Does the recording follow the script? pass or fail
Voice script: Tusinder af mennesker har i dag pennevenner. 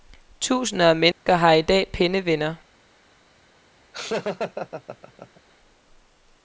pass